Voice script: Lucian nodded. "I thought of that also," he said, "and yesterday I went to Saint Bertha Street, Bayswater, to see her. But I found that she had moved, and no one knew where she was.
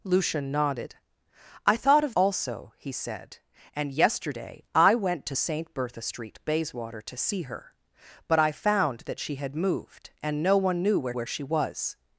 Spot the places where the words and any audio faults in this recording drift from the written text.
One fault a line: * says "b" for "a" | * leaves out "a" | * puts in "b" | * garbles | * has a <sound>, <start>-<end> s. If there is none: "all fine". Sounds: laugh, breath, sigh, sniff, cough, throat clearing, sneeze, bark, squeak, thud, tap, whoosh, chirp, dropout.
* leaves out "that"
* puts in "where"